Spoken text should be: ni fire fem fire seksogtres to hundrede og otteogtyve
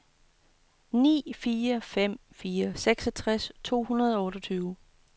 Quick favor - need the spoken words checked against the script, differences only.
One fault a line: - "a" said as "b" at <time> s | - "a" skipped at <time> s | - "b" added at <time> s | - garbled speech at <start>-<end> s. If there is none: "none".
none